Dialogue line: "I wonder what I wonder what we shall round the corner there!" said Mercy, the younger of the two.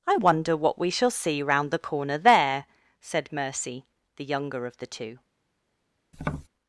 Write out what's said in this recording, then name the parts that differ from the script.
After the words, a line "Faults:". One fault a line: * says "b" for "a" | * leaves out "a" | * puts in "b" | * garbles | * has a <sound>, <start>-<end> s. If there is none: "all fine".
"I wonder what we shall see round the corner there!" said Mercy, the younger of the two.
Faults:
* leaves out "I wonder what"
* puts in "see"
* has a tap, 6.1-6.5 s